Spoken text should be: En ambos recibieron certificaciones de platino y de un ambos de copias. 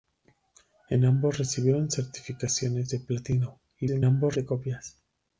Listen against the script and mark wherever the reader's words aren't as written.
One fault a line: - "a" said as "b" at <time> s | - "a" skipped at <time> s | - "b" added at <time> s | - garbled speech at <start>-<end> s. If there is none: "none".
none